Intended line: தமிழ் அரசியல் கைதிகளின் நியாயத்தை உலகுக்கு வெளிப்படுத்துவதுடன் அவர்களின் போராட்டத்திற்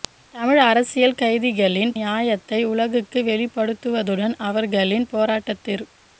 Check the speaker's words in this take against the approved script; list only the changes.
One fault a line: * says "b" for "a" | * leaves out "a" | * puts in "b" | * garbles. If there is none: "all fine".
all fine